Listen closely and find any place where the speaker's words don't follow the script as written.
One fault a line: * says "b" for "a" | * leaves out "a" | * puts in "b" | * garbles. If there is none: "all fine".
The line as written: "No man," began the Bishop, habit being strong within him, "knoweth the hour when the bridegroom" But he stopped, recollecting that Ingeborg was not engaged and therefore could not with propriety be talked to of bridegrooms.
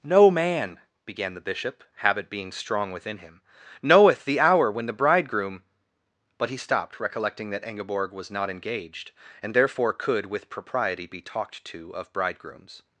* leaves out "not"